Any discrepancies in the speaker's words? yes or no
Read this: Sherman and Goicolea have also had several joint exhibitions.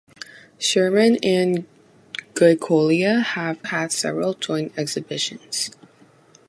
yes